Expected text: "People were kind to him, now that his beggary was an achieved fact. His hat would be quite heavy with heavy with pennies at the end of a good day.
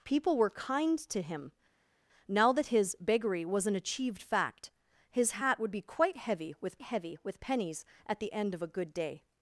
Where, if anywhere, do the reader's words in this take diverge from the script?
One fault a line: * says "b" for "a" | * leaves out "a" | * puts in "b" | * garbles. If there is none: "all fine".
all fine